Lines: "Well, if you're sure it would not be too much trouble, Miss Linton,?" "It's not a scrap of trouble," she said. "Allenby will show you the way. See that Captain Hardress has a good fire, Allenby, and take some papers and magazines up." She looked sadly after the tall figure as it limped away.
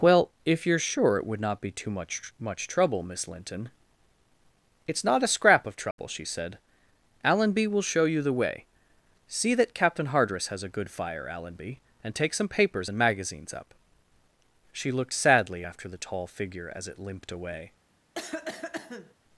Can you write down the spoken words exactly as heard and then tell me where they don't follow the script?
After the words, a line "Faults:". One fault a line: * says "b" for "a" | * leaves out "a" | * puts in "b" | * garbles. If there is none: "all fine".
"Well, if you're sure it would not be too much much trouble, Miss Linton,?" "It's not a scrap of trouble," she said. "Allenby will show you the way. See that Captain Hardress has a good fire, Allenby, and take some papers and magazines up." She looked sadly after the tall figure as it limped away.
Faults:
* puts in "much"